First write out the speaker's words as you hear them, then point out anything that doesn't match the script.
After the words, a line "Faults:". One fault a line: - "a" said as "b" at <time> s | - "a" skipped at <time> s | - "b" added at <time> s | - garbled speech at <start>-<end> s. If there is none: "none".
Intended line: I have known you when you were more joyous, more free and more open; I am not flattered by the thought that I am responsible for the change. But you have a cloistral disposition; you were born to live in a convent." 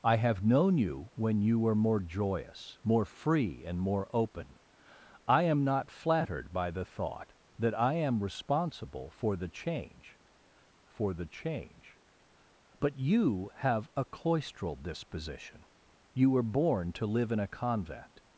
I have known you when you were more joyous, more free and more open; I am not flattered by the thought that I am responsible for the change for the change. But you have a cloistral disposition; you were born to live in a convent."
Faults:
- "for the change" added at 10.9 s